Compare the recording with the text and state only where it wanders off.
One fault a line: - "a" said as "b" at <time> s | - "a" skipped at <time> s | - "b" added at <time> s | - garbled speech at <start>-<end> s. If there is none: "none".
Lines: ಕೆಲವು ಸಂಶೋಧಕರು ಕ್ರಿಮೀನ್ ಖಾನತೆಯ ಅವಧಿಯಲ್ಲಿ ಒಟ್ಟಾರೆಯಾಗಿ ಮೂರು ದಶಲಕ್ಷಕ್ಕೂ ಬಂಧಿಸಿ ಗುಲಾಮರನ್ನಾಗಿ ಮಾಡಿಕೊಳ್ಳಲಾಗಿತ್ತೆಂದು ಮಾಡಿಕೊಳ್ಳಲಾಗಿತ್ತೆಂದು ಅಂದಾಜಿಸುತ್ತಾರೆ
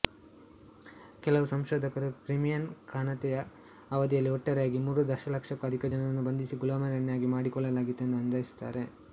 - "ಅಧಿಕ ಜನರನ್ನು" added at 5.7 s
- "ಮಾಡಿಕೊಳ್ಳಲಾಗಿತ್ತೆಂದು" skipped at 8.2 s